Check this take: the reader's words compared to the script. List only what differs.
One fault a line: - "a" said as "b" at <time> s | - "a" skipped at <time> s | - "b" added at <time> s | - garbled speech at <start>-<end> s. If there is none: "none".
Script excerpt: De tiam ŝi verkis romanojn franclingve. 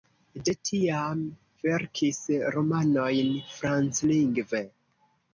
- "ŝi" skipped at 1.2 s